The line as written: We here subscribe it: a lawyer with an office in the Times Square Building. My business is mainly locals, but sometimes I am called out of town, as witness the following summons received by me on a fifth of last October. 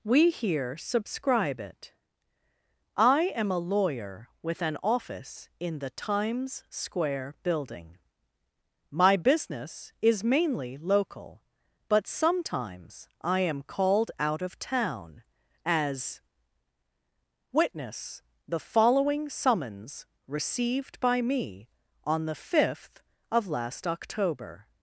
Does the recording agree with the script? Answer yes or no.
no